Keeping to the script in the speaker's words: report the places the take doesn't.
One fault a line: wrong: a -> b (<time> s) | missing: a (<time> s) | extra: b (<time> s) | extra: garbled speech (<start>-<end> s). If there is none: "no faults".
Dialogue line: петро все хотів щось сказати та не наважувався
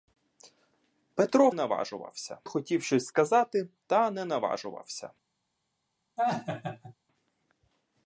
wrong: все -> наважувався (1.5 s)